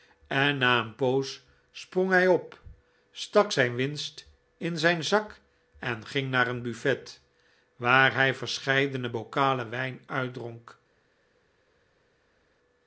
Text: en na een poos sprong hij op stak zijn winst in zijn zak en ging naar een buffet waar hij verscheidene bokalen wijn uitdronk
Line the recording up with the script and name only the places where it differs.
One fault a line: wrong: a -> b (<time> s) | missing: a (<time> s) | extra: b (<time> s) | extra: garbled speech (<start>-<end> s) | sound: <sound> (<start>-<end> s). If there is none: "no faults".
no faults